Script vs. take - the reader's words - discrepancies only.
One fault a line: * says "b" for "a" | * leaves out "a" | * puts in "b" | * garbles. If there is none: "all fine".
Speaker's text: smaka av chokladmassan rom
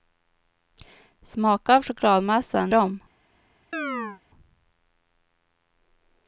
all fine